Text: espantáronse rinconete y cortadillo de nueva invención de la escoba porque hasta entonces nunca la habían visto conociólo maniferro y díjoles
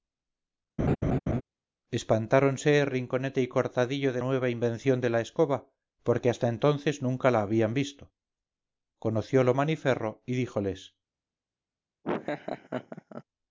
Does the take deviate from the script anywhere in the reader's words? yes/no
no